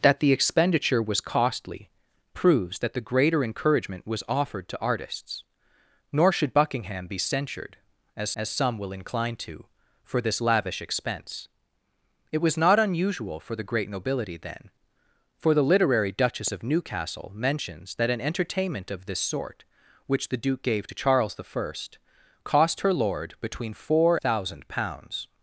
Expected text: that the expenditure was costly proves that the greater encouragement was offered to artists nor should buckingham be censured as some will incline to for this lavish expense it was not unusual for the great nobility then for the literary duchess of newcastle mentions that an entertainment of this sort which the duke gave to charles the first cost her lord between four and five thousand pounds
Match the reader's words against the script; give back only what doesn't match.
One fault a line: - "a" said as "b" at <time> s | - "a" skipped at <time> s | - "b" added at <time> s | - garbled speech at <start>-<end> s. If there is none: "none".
- "as" added at 8.4 s
- "and five" skipped at 24.2 s